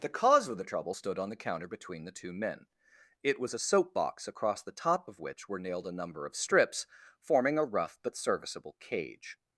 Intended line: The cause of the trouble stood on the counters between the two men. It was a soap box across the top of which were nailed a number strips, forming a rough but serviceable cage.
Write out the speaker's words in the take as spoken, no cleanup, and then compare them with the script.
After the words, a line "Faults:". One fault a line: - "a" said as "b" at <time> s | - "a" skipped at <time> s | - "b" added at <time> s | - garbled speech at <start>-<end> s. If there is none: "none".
The cause of the trouble stood on the counter between the two men. It was a soap box across the top of which were nailed a number of strips, forming a rough but serviceable cage.
Faults:
- "counters" said as "counter" at 1.3 s
- "of" added at 6.2 s